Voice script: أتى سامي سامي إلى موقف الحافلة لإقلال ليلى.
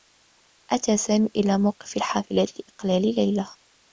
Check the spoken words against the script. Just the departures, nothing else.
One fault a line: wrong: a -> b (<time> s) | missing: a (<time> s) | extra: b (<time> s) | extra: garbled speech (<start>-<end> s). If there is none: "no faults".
missing: سامي (1.3 s)